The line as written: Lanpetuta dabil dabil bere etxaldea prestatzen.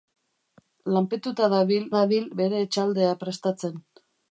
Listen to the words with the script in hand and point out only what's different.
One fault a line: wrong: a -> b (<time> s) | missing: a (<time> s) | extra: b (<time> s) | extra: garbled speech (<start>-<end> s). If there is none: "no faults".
no faults